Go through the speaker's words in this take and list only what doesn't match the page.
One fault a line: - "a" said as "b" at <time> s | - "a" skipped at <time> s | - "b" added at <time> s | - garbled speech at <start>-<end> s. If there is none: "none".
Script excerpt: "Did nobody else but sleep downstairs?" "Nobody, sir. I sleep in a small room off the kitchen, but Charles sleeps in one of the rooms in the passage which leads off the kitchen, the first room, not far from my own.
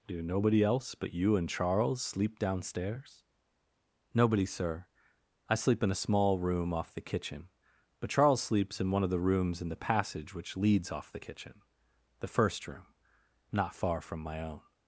- "Did" said as "Do" at 0.1 s
- "you and Charles" added at 1.1 s